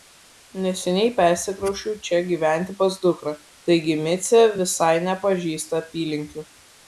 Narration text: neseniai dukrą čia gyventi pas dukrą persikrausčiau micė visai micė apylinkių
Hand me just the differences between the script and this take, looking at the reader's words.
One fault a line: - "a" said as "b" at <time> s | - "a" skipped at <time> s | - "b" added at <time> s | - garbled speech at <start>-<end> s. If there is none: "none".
- "dukrą" said as "persikrausčiau" at 1.2 s
- "persikrausčiau" said as "taigi" at 3.7 s
- "micė" said as "nepažįsta" at 5.1 s